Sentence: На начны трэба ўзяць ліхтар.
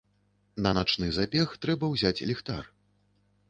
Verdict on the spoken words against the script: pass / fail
fail